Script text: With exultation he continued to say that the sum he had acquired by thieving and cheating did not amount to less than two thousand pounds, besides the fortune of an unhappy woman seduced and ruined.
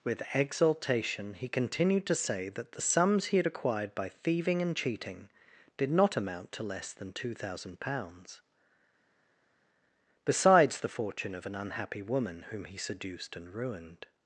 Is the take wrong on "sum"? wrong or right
wrong